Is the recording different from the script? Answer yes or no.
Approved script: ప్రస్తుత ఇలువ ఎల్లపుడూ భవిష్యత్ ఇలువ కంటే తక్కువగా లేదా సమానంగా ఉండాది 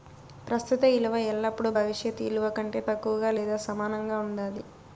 no